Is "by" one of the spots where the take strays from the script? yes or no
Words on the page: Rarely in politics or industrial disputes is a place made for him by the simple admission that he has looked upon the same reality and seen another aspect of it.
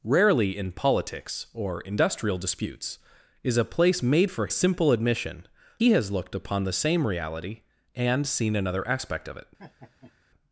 yes